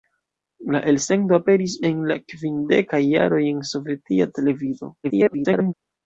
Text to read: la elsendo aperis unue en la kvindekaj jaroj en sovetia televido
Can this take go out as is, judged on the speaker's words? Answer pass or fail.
fail